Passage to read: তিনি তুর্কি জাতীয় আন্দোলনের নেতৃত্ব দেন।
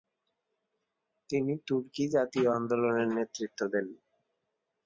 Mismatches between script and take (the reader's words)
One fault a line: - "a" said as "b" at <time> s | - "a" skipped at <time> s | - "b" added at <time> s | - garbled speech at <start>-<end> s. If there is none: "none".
none